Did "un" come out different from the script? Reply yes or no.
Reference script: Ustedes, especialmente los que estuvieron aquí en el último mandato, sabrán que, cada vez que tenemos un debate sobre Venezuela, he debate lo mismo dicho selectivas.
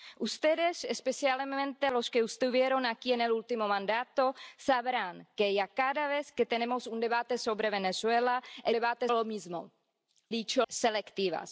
no